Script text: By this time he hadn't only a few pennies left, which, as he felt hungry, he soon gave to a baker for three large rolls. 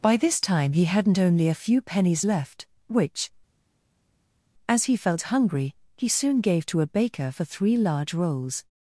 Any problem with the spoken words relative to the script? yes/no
no